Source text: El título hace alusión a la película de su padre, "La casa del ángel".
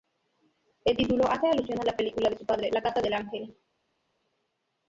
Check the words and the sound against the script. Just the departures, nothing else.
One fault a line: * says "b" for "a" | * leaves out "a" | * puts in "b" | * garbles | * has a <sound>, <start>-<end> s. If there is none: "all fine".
all fine